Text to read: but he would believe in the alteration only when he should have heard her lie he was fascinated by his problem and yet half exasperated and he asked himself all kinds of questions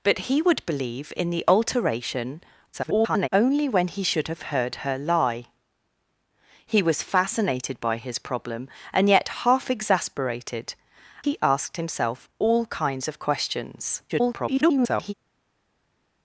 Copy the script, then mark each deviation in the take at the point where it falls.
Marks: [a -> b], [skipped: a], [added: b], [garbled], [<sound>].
but he would believe in the alteration [garbled] only when he should have heard her lie he was fascinated by his problem and yet half exasperated [skipped: and] he asked himself all kinds of questions [garbled]